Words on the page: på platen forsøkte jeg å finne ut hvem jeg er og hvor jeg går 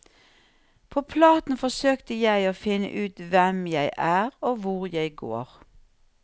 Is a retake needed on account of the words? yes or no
no